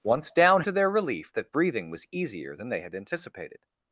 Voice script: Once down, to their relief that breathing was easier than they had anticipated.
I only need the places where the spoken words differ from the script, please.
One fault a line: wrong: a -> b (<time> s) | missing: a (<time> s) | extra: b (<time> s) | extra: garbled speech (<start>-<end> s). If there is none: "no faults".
no faults